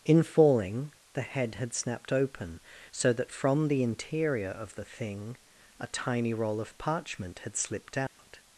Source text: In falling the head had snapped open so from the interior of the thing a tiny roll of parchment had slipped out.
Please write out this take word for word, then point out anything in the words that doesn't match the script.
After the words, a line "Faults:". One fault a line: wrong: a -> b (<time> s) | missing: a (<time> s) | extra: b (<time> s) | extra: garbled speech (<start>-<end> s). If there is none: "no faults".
In falling the head had snapped open so that from the interior of the thing a tiny roll of parchment had slipped out.
Faults:
extra: that (3.1 s)